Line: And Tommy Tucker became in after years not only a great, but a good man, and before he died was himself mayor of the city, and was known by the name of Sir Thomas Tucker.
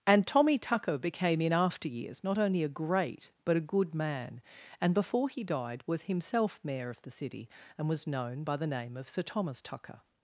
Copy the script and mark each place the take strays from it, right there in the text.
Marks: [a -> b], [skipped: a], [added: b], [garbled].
And Tommy Tucker became in after years not only a great, but a good man, and before he died was himself mayor of the city, and was known by the name of Sir Thomas Tucker.